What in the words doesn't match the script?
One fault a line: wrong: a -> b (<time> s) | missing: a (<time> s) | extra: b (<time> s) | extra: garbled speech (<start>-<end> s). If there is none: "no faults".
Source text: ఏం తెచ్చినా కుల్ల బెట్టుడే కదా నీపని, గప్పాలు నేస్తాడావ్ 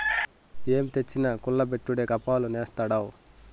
missing: కదా నీపని (2.0 s)